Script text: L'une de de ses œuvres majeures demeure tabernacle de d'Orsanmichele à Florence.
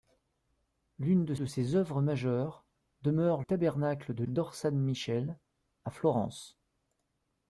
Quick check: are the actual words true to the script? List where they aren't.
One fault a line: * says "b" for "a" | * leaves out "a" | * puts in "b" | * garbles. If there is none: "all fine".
all fine